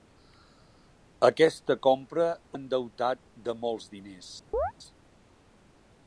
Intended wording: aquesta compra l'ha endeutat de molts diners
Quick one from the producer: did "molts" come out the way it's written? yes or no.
yes